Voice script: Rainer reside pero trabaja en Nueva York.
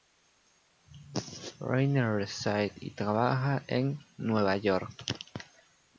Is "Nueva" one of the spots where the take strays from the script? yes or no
no